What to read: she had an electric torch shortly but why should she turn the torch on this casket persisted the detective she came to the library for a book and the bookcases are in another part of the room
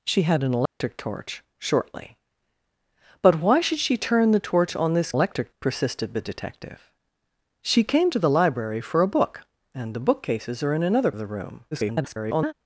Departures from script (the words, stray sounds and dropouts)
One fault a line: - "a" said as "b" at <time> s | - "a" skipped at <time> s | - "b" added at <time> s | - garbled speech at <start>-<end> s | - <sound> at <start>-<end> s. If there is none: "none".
- dropout at 0.7-0.8 s
- "casket" said as "electric" at 5.1 s
- "part" skipped at 11.1 s
- garbled speech at 11.7-12.5 s